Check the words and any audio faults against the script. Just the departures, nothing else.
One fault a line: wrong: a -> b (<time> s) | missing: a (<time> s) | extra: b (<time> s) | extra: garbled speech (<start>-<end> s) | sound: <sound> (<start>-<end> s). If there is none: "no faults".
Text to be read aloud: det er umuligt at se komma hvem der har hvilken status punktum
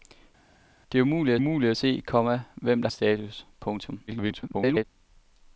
extra: umuligt (1.4 s)
missing: har hvilken (2.9 s)
extra: garbled speech (4.1-4.8 s)